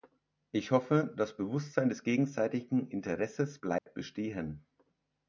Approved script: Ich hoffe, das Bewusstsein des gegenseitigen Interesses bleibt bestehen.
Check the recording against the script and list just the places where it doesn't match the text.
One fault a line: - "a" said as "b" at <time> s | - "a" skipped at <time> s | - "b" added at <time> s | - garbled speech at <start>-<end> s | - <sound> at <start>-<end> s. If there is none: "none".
- dropout at 3.8-3.9 s